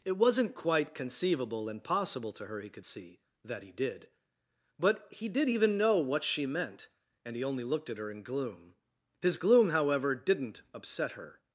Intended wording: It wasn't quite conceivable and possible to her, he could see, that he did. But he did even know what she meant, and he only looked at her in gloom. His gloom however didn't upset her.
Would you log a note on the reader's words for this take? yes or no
no